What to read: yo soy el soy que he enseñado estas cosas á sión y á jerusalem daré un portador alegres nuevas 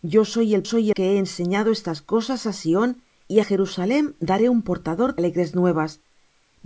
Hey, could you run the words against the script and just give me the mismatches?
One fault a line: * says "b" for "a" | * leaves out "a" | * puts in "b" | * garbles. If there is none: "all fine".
all fine